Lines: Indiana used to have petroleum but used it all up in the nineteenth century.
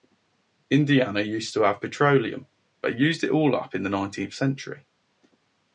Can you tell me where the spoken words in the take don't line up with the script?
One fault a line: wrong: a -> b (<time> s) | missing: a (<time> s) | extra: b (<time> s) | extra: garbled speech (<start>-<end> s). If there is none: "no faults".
no faults